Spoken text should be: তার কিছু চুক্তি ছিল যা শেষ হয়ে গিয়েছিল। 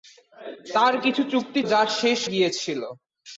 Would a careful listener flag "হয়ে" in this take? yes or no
yes